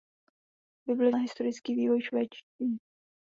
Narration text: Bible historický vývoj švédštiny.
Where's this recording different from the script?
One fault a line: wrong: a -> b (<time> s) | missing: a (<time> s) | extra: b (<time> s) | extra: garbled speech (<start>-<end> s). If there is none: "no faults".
no faults